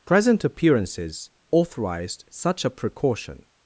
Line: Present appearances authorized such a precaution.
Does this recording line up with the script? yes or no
yes